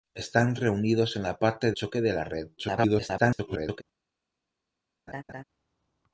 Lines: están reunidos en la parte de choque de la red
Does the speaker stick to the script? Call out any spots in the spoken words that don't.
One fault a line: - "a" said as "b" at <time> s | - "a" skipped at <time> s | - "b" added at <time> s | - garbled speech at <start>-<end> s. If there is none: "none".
- "de" skipped at 1.7 s
- garbled speech at 2.6-3.8 s